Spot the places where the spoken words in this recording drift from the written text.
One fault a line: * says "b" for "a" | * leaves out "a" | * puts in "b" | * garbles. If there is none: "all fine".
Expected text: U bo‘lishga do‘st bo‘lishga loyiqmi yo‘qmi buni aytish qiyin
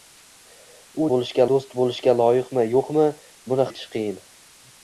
all fine